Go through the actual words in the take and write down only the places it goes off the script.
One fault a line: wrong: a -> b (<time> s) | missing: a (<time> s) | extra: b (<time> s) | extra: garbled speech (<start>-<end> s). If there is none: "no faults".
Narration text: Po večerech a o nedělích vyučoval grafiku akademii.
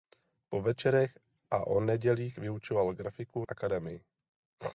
no faults